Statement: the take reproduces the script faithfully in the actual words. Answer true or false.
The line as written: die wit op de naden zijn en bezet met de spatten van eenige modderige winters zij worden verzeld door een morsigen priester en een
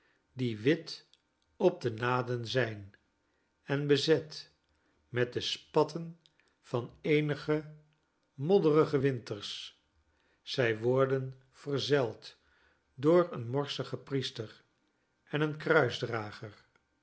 true